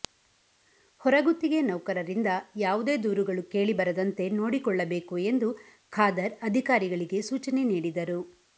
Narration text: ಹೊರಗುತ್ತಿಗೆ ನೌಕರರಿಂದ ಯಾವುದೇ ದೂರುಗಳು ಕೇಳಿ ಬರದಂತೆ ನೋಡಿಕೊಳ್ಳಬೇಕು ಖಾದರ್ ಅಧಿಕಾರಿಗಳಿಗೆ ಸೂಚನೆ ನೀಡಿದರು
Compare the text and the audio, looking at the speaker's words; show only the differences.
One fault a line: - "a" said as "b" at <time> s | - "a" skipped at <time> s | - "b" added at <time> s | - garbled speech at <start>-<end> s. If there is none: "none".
- "ಎಂದು" added at 5.3 s